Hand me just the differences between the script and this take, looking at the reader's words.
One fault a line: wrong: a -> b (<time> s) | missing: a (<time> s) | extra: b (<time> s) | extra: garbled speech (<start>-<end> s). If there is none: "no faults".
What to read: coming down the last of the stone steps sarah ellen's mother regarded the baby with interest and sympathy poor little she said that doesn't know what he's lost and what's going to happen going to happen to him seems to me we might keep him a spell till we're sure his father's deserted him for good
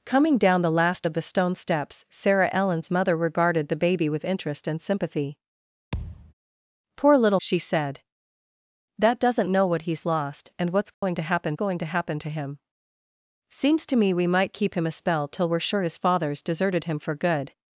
no faults